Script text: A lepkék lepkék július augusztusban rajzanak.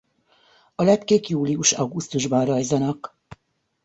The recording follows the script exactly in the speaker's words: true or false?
false